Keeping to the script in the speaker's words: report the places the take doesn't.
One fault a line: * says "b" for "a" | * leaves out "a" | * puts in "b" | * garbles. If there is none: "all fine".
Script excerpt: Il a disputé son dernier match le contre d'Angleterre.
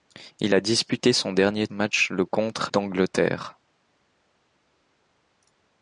all fine